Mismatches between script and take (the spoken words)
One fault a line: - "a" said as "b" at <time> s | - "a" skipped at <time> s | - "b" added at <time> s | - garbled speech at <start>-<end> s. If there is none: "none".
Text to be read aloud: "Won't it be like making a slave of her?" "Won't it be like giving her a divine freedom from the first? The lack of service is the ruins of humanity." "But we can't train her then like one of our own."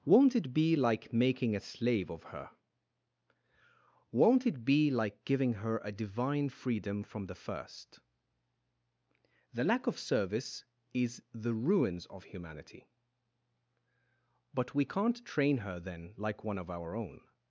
none